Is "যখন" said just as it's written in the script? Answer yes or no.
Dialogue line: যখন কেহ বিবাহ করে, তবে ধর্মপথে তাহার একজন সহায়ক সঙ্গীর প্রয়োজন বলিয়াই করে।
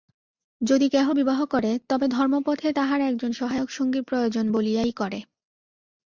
no